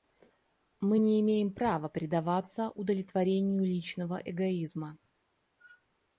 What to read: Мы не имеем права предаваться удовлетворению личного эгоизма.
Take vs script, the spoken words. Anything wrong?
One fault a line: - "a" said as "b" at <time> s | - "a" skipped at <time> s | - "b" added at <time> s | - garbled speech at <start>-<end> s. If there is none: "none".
none